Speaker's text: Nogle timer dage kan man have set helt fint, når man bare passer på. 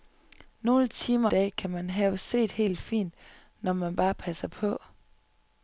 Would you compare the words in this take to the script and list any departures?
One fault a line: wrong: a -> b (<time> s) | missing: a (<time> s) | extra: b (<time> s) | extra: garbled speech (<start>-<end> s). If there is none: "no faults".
no faults